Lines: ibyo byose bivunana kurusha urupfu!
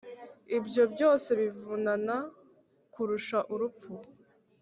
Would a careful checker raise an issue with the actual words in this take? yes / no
no